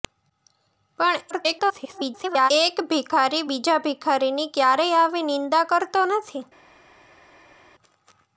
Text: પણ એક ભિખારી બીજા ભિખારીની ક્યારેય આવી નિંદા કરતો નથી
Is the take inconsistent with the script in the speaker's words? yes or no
yes